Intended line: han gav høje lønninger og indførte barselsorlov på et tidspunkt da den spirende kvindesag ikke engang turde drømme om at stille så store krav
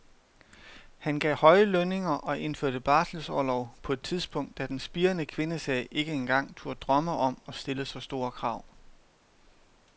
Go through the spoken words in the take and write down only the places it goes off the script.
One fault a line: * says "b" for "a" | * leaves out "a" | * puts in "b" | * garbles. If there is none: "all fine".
all fine